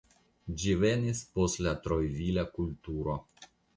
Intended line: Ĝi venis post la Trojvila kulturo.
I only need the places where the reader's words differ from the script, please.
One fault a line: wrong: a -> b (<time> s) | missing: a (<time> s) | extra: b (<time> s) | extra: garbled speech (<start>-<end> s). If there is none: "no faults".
no faults